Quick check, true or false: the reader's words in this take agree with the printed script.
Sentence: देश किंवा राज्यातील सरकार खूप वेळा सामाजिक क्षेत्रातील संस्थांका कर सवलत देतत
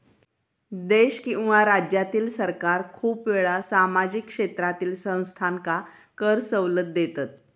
true